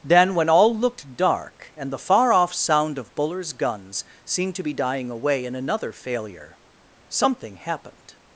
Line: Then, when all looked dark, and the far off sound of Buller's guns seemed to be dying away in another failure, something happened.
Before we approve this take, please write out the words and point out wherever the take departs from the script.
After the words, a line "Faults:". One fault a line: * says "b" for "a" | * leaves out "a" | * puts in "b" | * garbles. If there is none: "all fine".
Then, when all looked dark, and the far off sound of Buller's guns seemed to be dying away in another failure, something happened.
Faults:
all fine